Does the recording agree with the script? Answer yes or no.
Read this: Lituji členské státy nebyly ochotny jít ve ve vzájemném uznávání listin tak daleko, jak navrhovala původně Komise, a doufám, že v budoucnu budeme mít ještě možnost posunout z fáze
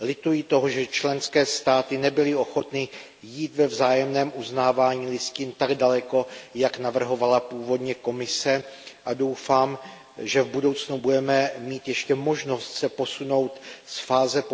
no